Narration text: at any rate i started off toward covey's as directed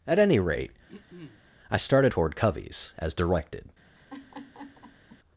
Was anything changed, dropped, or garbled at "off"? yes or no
yes